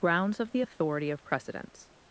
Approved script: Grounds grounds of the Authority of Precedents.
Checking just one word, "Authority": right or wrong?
right